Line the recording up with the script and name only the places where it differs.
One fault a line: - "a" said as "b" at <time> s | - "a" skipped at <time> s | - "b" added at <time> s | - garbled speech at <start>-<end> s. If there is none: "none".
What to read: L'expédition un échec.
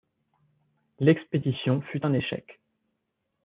- "fut" added at 1.9 s